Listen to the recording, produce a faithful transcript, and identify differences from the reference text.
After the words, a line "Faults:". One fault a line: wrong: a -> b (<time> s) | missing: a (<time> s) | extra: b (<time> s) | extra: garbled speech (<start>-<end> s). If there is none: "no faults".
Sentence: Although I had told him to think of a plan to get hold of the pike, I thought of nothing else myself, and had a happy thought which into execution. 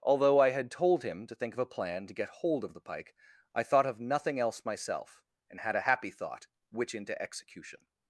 Although I had told him to think of a plan to get hold of the pike, I thought of nothing else myself, and had a happy thought which into execution.
Faults:
no faults